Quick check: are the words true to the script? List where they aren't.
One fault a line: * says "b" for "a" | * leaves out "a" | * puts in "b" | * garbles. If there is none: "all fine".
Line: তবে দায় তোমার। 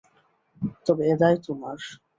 * puts in "এ"